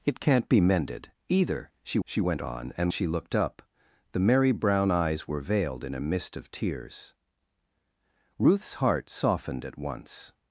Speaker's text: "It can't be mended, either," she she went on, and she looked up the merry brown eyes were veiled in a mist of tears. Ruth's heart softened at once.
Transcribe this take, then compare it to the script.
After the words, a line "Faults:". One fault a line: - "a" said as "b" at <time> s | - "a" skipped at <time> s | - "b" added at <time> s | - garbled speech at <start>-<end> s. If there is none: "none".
"It can't be mended, either," she she went on, and she looked up the merry brown eyes were veiled in a mist of tears. Ruth's heart softened at once.
Faults:
none